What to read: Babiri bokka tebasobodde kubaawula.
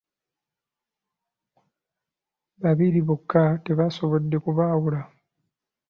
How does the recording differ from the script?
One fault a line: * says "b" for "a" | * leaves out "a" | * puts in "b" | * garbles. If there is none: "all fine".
all fine